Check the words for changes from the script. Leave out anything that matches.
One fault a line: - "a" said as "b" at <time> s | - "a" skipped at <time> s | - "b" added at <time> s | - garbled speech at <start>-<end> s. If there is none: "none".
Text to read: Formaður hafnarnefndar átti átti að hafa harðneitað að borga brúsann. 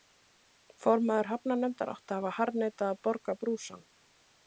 - "átti" skipped at 2.2 s